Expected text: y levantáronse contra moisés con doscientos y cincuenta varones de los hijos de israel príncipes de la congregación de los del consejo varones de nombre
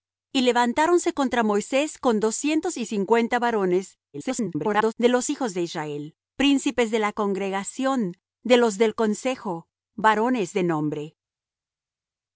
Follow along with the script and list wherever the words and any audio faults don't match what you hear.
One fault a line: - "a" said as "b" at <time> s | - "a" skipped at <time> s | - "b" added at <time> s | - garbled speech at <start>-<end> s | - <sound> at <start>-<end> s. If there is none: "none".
- garbled speech at 4.1-4.9 s